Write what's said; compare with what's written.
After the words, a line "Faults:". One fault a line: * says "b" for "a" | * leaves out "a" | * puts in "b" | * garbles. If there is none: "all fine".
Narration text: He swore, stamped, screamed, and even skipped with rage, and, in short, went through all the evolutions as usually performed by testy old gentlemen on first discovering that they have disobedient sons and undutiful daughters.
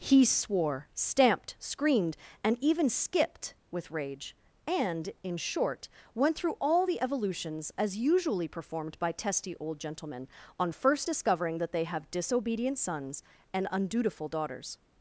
He swore, stamped, screamed, and even skipped with rage, and, in short, went through all the evolutions as usually performed by testy old gentlemen on first discovering that they have disobedient sons and undutiful daughters.
Faults:
all fine